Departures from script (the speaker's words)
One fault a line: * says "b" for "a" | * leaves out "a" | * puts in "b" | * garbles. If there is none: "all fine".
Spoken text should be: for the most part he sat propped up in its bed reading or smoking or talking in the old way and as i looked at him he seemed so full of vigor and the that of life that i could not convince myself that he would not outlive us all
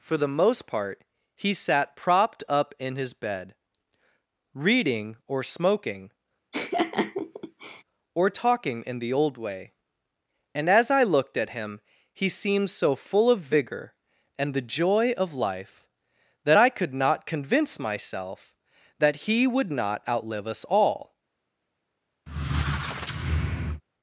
* says "his" for "its"
* says "joy" for "that"